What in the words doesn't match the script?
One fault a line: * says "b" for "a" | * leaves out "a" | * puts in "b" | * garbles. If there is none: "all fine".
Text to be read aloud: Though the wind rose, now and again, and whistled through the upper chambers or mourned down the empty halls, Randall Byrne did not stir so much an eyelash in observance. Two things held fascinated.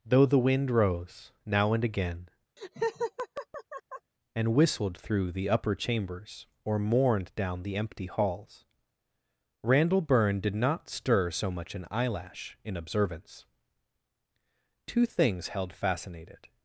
all fine